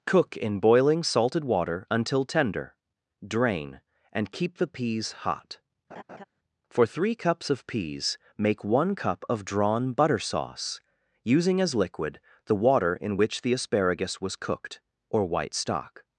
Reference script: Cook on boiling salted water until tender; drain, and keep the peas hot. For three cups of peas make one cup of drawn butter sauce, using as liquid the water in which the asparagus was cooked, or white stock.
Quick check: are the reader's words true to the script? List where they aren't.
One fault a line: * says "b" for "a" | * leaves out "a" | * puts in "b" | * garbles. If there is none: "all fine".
* says "in" for "on"